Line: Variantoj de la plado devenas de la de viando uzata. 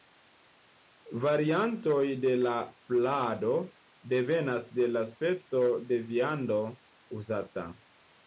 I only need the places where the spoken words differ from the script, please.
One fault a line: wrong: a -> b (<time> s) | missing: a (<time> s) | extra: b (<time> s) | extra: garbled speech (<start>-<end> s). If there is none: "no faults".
extra: speco (5.1 s)